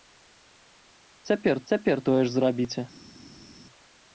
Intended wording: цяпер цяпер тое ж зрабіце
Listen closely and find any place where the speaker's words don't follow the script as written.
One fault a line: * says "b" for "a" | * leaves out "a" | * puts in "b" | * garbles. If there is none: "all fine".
all fine